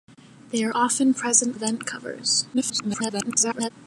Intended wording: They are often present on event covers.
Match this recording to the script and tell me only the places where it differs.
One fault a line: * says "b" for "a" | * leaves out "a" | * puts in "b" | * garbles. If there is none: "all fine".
* leaves out "on"
* garbles